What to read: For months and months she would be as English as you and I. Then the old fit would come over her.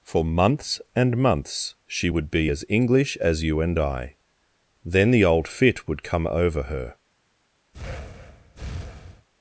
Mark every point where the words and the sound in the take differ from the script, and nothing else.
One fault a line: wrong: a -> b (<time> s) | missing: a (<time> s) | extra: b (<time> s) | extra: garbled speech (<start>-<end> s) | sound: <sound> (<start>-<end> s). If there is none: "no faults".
sound: breath (7.7-9.3 s)